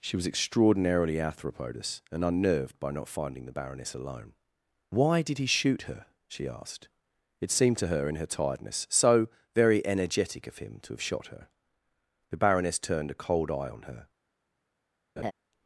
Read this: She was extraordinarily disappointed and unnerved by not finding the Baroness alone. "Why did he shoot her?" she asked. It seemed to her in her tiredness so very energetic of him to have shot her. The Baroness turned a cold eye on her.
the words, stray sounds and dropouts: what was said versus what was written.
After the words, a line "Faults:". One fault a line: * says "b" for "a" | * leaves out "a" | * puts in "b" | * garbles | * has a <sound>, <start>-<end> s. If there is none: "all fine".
She was extraordinarily arthropodous and unnerved by not finding the Baroness alone. "Why did he shoot her?" she asked. It seemed to her in her tiredness so very energetic of him to have shot her. The Baroness turned a cold eye on her.
Faults:
* says "arthropodous" for "disappointed"
* has a laugh, 15.2-15.3 s